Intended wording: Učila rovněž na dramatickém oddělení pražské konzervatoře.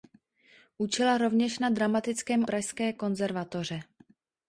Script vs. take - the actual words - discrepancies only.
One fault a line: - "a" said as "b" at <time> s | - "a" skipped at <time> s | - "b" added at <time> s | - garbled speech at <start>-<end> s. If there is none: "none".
- "oddělení" skipped at 2.5 s